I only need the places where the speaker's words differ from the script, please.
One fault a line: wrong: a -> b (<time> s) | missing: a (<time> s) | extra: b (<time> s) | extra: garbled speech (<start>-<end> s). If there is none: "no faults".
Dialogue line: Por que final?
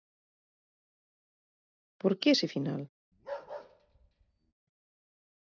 extra: ese (2.3 s)